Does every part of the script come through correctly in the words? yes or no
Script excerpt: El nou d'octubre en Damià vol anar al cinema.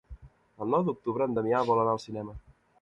yes